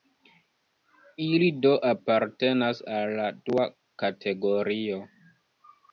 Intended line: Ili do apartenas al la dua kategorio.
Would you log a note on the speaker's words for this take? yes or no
no